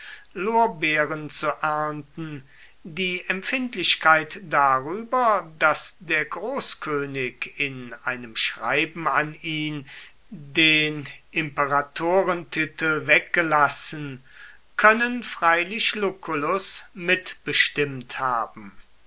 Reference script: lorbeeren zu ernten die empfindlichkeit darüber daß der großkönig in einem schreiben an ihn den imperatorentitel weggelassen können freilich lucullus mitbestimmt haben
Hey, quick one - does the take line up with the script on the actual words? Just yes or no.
yes